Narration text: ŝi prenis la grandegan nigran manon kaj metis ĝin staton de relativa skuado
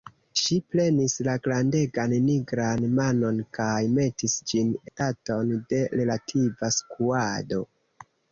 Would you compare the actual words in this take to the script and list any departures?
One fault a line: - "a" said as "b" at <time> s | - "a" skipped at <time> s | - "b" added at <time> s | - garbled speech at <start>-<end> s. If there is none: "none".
none